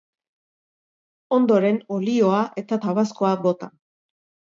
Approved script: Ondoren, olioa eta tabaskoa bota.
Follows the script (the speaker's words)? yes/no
yes